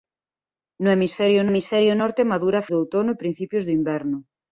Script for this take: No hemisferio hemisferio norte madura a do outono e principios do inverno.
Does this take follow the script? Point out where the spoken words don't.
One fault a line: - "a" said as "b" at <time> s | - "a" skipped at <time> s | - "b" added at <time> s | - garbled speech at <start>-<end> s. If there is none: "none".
none